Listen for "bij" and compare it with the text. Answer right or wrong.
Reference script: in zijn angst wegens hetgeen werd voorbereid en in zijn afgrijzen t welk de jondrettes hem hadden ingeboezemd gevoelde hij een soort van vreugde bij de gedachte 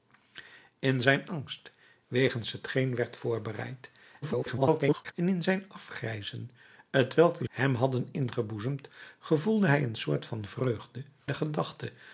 wrong